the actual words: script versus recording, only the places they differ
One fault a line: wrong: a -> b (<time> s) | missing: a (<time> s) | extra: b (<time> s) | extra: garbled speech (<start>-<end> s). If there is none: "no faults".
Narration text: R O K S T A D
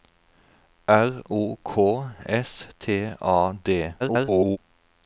extra: garbled speech (4.0-4.6 s)